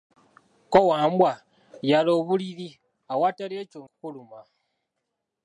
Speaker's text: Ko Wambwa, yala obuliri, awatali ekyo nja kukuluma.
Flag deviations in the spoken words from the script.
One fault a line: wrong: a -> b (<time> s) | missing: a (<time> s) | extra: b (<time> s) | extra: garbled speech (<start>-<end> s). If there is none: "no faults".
missing: nja (3.8 s)